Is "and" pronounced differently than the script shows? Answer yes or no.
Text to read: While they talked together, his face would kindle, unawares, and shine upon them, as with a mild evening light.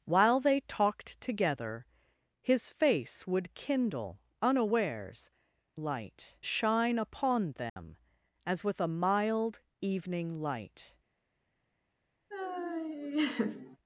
yes